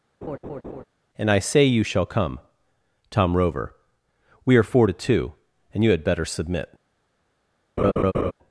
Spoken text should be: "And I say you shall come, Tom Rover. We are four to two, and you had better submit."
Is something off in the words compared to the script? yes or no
no